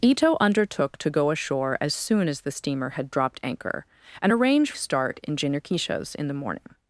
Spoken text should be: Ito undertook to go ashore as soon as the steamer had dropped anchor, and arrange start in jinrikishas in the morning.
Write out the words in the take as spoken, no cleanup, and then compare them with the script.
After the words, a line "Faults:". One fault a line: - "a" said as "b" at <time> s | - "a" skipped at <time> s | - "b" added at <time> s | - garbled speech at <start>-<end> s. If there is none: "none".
Ito undertook to go ashore as soon as the steamer had dropped anchor, and arrange start in jinrikishas in the morning.
Faults:
none